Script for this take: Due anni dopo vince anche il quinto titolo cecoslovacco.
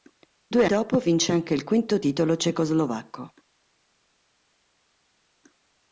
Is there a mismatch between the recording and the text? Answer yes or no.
yes